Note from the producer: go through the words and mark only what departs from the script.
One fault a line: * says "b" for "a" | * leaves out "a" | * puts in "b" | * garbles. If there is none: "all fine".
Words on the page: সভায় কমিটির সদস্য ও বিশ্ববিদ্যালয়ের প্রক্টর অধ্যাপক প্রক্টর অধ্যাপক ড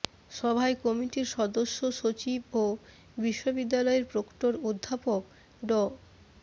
* puts in "সচিব"
* leaves out "প্রক্টর অধ্যাপক"